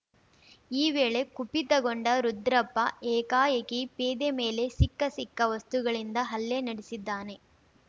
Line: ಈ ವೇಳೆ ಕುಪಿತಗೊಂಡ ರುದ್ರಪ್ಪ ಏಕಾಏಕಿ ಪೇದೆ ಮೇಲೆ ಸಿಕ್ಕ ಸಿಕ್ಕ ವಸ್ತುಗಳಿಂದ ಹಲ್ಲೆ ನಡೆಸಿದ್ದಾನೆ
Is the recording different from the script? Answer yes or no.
no